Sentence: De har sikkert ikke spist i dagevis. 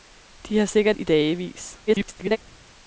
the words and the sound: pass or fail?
fail